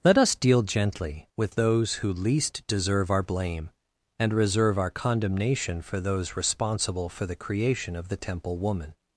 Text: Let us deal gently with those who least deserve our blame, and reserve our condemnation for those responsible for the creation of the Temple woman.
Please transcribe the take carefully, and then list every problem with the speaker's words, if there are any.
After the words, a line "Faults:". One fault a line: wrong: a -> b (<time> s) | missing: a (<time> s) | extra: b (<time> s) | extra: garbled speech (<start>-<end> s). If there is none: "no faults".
Let us deal gently with those who least deserve our blame, and reserve our condemnation for those responsible for the creation of the Temple woman.
Faults:
no faults